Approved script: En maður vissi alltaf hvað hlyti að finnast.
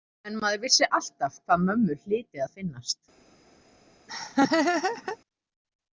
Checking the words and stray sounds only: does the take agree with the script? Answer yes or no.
no